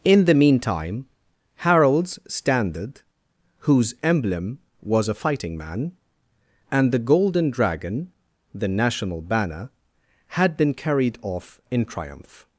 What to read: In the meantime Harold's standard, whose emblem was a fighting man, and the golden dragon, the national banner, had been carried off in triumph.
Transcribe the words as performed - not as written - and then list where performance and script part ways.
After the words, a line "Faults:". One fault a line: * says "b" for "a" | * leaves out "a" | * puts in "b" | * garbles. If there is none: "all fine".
In the meantime Harold's standard, whose emblem was a fighting man, and the golden dragon, the national banner, had been carried off in triumph.
Faults:
all fine